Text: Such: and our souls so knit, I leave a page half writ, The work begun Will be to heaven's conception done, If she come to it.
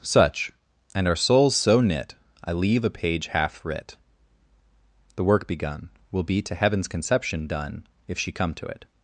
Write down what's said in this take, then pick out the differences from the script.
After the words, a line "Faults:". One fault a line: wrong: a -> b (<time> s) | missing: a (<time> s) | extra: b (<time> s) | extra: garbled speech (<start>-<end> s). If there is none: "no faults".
Such: and our souls so knit, I leave a page half writ, The work begun Will be to heaven's conception done, If she come to it.
Faults:
no faults